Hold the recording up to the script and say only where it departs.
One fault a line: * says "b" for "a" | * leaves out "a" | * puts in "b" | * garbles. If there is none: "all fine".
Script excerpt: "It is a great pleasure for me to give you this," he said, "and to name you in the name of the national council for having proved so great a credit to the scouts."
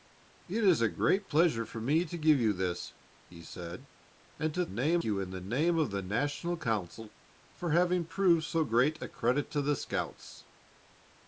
all fine